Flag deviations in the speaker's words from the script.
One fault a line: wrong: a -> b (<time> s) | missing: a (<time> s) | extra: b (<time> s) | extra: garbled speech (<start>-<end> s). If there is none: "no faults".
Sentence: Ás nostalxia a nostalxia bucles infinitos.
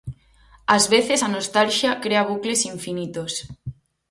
wrong: nostalxia -> veces (0.9 s)
extra: crea (2.0 s)